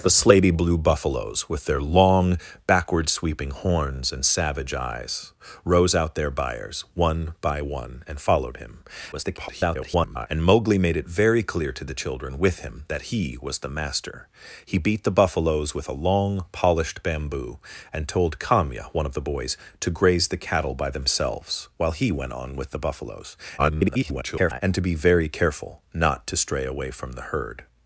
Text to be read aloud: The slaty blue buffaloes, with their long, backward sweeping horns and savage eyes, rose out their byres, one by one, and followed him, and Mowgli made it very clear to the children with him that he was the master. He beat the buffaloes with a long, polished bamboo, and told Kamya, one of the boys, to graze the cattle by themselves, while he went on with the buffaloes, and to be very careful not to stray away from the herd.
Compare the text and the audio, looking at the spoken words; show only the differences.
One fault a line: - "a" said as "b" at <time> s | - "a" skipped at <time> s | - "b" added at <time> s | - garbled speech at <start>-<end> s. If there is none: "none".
- garbled speech at 9.1-10.3 s
- garbled speech at 23.6-24.6 s